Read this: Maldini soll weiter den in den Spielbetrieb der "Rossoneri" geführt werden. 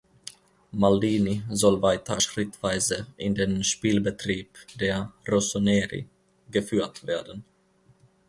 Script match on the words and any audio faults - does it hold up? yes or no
no